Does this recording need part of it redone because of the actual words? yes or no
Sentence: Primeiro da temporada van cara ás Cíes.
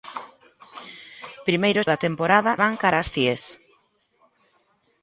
no